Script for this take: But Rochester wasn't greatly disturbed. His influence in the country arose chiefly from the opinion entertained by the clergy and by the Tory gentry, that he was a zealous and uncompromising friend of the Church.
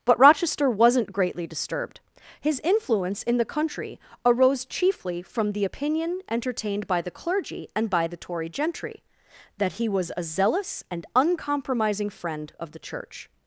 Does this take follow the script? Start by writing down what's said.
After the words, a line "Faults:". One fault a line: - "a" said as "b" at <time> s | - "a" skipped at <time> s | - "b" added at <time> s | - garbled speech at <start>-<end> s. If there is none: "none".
But Rochester wasn't greatly disturbed. His influence in the country arose chiefly from the opinion entertained by the clergy and by the Tory gentry, that he was a zealous and uncompromising friend of the Church.
Faults:
none